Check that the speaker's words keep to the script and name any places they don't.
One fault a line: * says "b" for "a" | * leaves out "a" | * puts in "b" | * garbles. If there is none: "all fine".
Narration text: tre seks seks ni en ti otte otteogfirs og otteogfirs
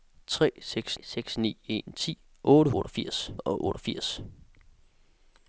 all fine